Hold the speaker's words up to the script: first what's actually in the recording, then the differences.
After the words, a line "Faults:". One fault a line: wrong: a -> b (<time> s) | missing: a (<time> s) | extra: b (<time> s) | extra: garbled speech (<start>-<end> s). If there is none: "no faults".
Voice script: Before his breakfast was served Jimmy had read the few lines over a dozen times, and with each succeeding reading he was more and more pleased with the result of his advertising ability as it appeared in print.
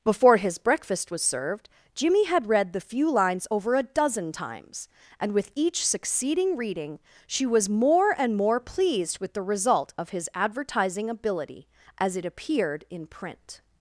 Before his breakfast was served Jimmy had read the few lines over a dozen times, and with each succeeding reading she was more and more pleased with the result of his advertising ability as it appeared in print.
Faults:
wrong: he -> she (7.3 s)